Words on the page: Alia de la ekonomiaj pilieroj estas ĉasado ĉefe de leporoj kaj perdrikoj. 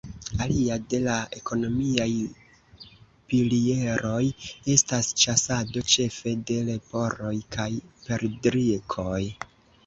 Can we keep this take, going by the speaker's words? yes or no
yes